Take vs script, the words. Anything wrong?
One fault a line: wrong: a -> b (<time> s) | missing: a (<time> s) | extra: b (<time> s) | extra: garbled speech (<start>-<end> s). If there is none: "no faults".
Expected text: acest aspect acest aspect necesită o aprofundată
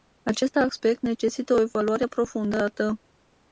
missing: acest aspect (1.0 s)
extra: evaluare (1.6 s)